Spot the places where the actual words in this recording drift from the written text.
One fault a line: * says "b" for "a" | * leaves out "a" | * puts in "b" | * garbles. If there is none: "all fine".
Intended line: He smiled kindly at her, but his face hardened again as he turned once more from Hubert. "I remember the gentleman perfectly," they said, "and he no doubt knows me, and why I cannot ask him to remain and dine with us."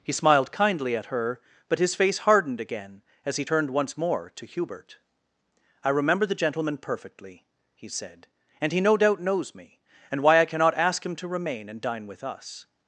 * says "to" for "from"
* says "he" for "they"